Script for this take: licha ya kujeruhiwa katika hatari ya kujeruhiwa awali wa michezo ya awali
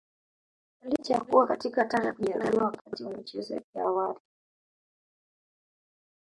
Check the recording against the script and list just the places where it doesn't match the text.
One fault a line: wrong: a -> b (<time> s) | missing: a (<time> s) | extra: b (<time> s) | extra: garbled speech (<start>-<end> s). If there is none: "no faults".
wrong: kujeruhiwa -> kuwa (1.2 s)
wrong: awali -> wakati (2.6 s)
extra: yake (3.5 s)